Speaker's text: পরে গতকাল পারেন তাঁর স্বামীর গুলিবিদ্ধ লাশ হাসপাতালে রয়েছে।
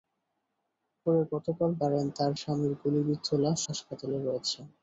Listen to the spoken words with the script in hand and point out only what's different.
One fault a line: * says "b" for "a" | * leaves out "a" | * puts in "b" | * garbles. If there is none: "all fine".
all fine